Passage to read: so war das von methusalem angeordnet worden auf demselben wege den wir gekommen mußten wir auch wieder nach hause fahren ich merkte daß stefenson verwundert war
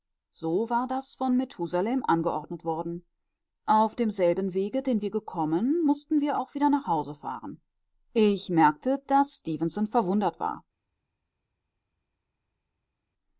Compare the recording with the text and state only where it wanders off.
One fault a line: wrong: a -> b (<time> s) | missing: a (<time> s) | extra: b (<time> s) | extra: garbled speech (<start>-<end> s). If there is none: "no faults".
no faults